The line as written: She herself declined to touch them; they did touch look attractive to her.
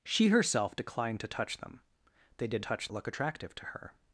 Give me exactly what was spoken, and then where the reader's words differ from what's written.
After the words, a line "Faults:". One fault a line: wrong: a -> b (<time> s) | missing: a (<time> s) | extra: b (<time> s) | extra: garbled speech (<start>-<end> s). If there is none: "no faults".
She herself declined to touch them; they did touch look attractive to her.
Faults:
no faults